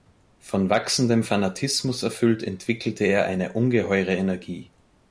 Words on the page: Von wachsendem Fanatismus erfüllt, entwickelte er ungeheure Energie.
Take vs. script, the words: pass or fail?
fail